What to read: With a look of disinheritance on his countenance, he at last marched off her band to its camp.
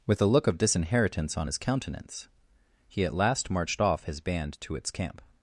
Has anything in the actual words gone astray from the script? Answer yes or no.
yes